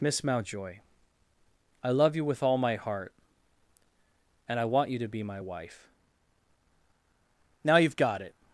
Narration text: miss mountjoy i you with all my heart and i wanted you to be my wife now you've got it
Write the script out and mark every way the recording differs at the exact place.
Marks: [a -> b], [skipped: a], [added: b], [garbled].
miss mountjoy i [added: love] you with all my heart and i [wanted -> want] you to be my wife now you've got it